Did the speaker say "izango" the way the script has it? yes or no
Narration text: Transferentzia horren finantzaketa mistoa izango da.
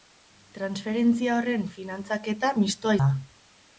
no